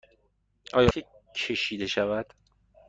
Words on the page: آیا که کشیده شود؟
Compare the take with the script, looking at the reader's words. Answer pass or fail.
pass